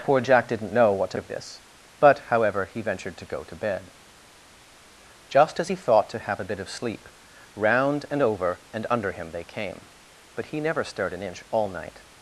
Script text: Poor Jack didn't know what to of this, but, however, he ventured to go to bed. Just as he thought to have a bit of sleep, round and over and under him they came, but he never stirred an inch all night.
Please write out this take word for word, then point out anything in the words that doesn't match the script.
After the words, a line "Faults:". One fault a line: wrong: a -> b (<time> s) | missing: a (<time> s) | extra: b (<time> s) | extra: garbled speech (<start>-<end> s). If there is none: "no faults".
Poor Jack didn't know what to of this, but, however, he ventured to go to bed. Just as he thought to have a bit of sleep, round and over and under him they came, but he never stirred an inch all night.
Faults:
no faults